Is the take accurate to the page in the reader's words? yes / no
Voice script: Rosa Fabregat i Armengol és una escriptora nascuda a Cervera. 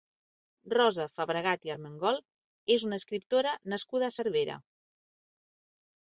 yes